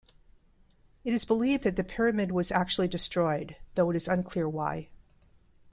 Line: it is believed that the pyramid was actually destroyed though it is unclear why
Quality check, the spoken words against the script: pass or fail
pass